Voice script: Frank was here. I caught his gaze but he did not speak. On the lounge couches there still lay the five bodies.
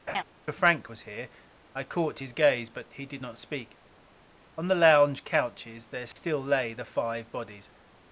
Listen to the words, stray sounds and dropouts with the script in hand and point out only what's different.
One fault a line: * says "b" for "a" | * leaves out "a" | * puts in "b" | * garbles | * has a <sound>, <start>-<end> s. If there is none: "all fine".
* has a laugh, 0.1-0.2 s
* has a dropout, 6.1-6.2 s